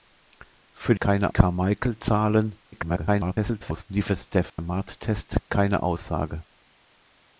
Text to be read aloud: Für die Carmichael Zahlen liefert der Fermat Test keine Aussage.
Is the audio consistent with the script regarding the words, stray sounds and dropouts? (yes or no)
no